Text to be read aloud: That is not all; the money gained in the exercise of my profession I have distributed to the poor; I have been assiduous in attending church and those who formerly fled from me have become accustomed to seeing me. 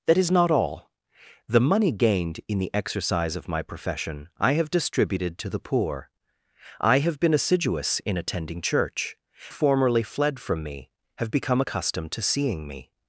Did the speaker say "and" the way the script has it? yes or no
no